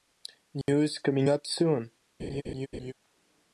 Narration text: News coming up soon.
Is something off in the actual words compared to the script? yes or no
no